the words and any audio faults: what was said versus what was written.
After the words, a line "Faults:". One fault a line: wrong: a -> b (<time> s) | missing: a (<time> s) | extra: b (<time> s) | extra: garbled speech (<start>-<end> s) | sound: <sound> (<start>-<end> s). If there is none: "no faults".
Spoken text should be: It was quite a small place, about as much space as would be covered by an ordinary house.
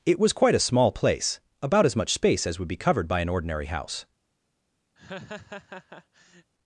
It was quite a small place, about as much space as would be covered by an ordinary house.
Faults:
sound: laugh (5.0-6.5 s)